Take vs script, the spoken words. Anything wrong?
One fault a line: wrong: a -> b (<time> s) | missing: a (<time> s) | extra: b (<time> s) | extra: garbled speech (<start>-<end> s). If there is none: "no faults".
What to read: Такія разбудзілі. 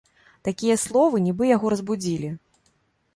extra: словы нібы яго (0.8 s)